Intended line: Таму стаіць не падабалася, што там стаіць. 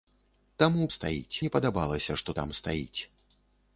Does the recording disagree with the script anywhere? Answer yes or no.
no